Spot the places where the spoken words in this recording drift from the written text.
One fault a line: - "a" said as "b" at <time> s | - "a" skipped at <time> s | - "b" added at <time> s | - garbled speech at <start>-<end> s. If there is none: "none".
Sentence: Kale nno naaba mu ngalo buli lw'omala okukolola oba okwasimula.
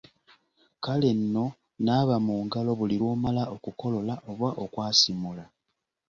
none